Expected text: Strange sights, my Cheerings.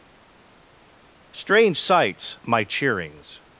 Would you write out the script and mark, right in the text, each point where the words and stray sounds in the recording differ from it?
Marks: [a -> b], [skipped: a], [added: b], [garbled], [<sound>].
Strange sights, my Cheerings.